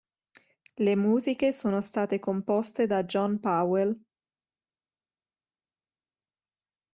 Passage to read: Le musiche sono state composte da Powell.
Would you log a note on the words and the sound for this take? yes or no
yes